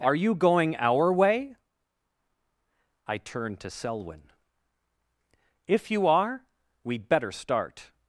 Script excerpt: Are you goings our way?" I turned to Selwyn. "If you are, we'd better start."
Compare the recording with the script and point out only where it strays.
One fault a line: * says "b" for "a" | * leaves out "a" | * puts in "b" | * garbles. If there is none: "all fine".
* says "going" for "goings"